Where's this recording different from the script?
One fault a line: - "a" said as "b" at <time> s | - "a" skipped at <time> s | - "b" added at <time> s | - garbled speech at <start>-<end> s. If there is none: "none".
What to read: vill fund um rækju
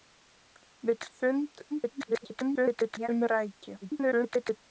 - garbled speech at 1.7-3.1 s
- garbled speech at 3.8-4.6 s